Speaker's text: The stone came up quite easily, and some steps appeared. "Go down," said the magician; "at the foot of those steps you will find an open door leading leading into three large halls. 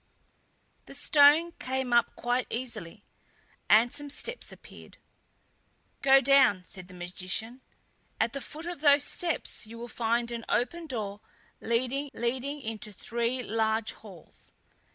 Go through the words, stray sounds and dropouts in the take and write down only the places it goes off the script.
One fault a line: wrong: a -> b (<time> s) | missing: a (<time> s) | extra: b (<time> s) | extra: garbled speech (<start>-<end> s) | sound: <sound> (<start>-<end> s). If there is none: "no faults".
no faults